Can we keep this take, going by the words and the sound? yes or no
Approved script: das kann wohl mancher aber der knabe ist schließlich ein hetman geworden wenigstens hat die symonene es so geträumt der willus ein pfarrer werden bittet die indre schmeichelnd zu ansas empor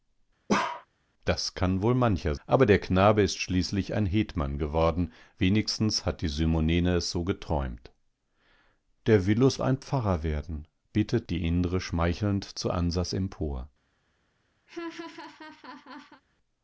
no